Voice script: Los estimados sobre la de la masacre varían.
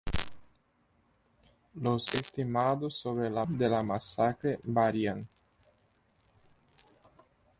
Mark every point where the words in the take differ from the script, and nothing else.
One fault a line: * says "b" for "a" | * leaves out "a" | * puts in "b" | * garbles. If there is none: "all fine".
all fine